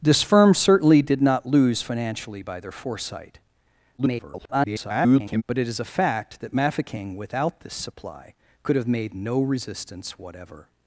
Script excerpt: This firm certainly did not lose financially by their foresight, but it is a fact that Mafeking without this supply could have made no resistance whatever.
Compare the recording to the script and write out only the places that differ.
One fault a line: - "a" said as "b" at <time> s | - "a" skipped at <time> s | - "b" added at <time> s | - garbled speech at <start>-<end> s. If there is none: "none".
- garbled speech at 4.0-5.4 s